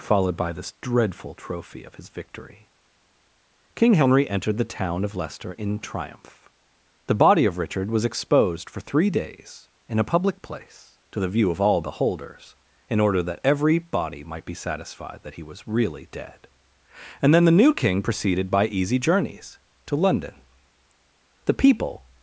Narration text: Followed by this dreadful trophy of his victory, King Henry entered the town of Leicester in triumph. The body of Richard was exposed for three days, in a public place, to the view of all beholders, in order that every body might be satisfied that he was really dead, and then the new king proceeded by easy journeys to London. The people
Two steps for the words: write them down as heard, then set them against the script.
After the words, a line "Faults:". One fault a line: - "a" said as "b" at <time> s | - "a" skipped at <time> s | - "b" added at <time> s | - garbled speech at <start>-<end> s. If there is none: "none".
Followed by this dreadful trophy of his victory, King Henry entered the town of Leicester in triumph. The body of Richard was exposed for three days, in a public place, to the view of all beholders, in order that every body might be satisfied that he was really dead, and then the new king proceeded by easy journeys to London. The people
Faults:
none